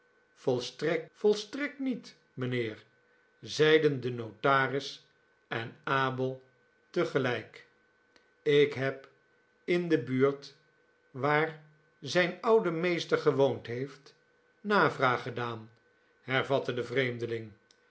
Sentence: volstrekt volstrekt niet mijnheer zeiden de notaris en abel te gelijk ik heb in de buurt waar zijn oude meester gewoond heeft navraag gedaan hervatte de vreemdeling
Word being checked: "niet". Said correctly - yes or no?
yes